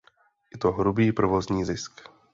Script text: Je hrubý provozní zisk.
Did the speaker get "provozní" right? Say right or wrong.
right